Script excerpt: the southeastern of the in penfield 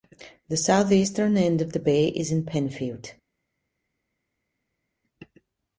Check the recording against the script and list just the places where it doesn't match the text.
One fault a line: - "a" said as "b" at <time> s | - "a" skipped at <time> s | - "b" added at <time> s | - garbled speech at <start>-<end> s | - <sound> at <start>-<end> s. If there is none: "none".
- "end" added at 1.4 s
- "bay is" added at 1.8 s